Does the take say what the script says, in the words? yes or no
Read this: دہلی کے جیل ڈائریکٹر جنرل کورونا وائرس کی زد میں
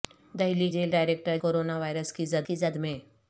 no